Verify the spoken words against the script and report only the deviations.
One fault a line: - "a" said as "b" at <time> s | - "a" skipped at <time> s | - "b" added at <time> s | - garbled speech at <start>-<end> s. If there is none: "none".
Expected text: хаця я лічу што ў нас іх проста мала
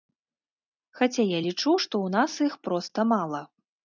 none